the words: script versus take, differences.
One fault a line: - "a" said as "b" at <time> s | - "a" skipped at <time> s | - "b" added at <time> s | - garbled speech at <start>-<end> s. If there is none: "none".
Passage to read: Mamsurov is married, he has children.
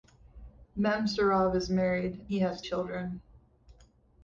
none